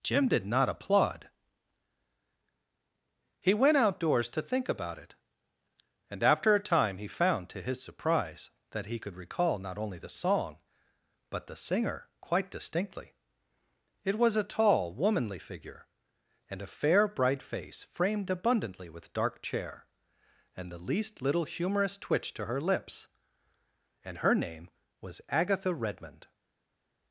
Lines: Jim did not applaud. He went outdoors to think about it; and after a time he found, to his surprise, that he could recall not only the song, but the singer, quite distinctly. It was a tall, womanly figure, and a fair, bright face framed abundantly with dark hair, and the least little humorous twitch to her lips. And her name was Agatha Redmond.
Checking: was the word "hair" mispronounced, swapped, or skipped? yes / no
yes